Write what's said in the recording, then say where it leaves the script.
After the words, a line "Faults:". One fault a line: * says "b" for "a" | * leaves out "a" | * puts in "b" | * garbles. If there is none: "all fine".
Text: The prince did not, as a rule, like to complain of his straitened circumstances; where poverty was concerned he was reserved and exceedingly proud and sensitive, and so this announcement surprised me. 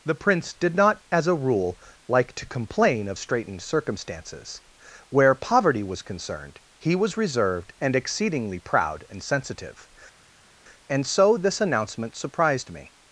The prince did not, as a rule, like to complain of straitened circumstances; where poverty was concerned he was reserved and exceedingly proud and sensitive, and so this announcement surprised me.
Faults:
* leaves out "his"